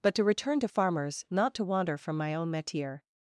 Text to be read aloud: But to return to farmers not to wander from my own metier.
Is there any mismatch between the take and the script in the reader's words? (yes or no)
no